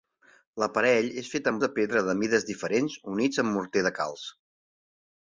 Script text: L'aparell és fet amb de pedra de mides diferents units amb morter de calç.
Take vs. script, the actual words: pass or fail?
pass